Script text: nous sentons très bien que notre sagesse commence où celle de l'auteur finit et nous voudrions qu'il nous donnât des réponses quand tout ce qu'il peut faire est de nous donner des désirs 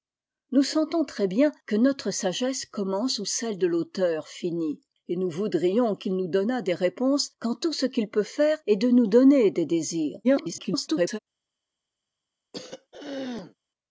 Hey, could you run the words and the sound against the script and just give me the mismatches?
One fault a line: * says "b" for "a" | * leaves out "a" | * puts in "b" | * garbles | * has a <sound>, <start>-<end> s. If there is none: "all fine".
* garbles
* has a throat clearing, 12.5-13.6 s